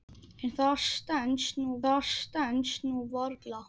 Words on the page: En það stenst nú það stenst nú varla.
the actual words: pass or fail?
pass